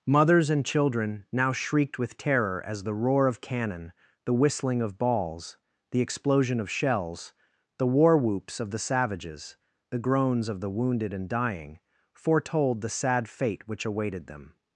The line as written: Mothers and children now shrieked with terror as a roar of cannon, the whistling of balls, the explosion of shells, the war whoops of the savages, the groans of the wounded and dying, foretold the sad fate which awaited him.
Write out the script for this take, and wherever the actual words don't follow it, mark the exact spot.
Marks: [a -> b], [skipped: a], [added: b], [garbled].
Mothers and children now shrieked with terror as [a -> the] roar of cannon, the whistling of balls, the explosion of shells, the war whoops of the savages, the groans of the wounded and dying, foretold the sad fate which awaited [him. -> them]